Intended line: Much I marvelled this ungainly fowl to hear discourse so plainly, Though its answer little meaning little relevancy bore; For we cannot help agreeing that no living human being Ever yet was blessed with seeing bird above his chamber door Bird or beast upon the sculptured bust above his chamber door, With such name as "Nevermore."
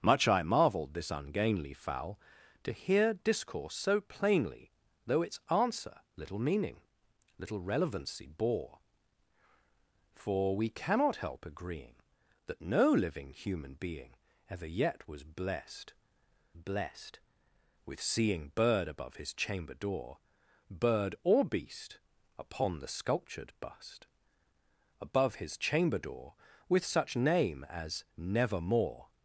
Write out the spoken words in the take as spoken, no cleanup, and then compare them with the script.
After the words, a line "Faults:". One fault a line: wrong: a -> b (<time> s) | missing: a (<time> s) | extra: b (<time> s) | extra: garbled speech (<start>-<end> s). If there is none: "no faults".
Much I marvelled this ungainly fowl to hear discourse so plainly, Though its answer little meaning little relevancy bore; For we cannot help agreeing that no living human being Ever yet was blessed blessed with seeing bird above his chamber door Bird or beast upon the sculptured bust above his chamber door, With such name as "Nevermore."
Faults:
extra: blessed (16.5 s)